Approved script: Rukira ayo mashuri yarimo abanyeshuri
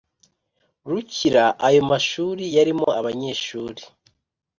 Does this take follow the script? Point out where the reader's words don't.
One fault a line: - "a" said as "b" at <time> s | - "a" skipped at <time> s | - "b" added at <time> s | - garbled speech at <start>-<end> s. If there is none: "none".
none